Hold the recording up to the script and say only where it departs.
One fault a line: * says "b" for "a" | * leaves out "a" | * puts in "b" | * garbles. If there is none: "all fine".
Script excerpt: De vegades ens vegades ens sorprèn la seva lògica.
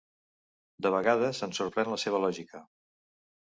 * leaves out "vegades ens"